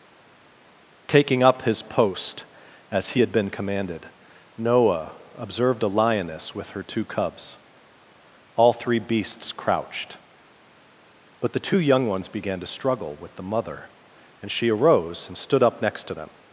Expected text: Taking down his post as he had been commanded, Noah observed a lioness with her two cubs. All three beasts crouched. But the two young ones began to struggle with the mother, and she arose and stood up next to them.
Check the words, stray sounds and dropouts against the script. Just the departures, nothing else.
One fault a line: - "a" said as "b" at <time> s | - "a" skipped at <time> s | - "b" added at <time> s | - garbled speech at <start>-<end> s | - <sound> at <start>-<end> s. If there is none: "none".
- "down" said as "up" at 1.4 s